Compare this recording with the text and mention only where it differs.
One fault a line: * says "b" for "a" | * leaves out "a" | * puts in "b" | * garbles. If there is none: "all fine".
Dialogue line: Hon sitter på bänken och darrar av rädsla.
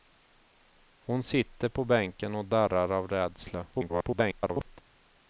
* garbles